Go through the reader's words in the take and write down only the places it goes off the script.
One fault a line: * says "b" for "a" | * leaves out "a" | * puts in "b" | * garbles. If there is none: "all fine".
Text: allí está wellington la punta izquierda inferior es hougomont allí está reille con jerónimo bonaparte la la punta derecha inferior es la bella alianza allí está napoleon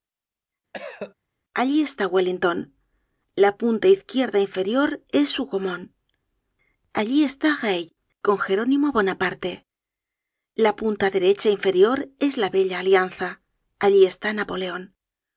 * leaves out "la"